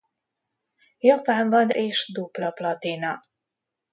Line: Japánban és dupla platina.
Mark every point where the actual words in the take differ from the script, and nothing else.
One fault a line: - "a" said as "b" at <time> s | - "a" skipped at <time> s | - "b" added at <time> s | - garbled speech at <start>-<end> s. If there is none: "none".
none